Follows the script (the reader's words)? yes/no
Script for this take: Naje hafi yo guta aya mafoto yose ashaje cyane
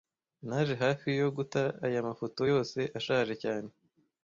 yes